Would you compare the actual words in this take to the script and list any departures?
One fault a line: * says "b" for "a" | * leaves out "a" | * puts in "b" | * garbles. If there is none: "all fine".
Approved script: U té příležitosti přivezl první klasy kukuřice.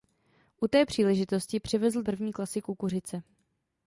all fine